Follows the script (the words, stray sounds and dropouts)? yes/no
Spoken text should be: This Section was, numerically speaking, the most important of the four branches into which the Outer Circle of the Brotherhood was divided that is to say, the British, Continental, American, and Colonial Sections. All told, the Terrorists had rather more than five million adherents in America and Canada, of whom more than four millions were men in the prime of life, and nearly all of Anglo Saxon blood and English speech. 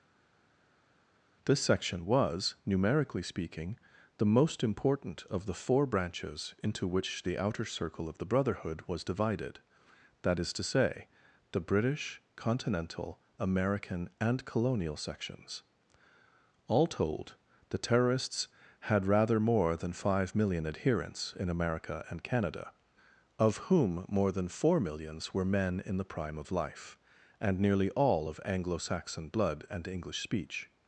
yes